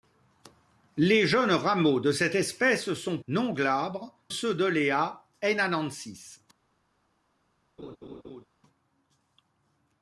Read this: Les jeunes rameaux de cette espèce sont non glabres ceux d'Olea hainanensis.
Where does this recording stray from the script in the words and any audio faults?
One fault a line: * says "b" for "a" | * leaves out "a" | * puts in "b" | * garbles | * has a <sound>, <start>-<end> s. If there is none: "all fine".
* has a laugh, 7.8-8.5 s